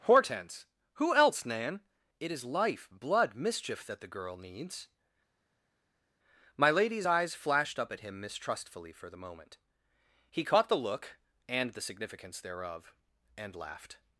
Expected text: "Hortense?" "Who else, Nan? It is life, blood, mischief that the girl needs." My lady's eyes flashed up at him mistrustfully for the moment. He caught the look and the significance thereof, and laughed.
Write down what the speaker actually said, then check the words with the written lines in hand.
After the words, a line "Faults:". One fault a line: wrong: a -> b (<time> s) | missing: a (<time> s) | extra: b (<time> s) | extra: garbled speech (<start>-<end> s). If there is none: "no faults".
"Hortense?" "Who else, Nan? It is life, blood, mischief that the girl needs." My lady's eyes flashed up at him mistrustfully for the moment. He caught the look and the significance thereof, and laughed.
Faults:
no faults